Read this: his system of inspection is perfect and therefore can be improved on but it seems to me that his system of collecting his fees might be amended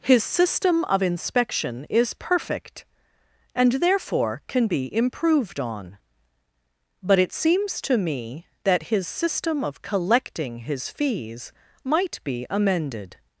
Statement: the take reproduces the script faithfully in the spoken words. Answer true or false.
true